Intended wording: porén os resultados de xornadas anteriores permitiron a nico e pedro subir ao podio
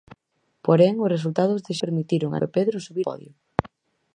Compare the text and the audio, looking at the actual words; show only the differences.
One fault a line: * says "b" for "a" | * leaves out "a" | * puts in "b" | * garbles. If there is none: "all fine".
* leaves out "xornadas anteriores"
* leaves out "nico"
* leaves out "ao"